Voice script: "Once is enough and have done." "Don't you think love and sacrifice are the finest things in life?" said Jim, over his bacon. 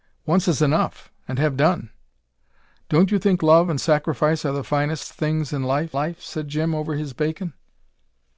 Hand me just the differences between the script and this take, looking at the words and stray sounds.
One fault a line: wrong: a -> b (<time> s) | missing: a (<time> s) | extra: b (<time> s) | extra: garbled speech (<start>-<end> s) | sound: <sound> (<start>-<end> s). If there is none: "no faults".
extra: life (5.9 s)